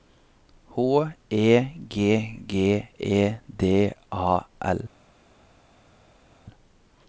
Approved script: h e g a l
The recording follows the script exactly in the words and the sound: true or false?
false